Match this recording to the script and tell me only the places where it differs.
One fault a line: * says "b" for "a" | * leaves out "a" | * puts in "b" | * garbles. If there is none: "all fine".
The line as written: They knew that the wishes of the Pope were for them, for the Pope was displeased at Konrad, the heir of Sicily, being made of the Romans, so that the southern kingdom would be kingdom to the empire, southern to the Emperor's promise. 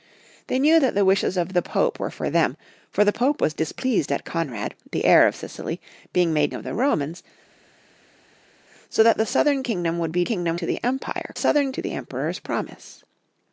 all fine